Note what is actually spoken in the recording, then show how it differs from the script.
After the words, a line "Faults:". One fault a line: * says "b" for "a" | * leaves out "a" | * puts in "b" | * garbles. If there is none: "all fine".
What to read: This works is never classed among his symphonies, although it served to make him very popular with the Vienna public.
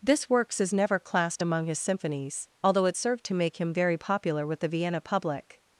This works is never classed among his symphonies, although it served to make him very popular with the Vienna public.
Faults:
all fine